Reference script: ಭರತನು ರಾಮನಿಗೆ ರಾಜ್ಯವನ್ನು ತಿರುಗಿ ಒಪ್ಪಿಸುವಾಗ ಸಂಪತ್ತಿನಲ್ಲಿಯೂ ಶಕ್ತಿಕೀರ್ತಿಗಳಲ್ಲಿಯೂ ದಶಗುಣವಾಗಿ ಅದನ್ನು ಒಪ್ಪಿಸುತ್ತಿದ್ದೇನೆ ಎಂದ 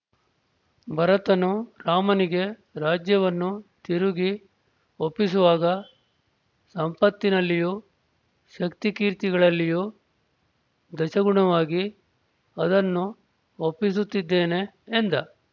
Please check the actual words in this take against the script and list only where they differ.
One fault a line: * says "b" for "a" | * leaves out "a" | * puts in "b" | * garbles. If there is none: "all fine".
all fine